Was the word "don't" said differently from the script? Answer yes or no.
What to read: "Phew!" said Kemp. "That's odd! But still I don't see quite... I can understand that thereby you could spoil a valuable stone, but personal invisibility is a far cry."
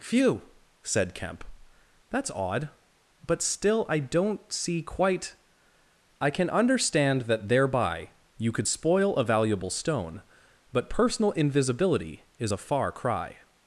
no